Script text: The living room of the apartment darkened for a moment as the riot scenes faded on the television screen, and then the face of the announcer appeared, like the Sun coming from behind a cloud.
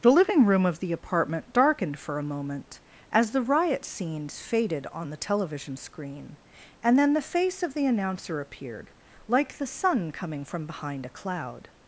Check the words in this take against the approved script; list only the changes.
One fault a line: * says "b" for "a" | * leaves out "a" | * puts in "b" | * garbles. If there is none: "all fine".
all fine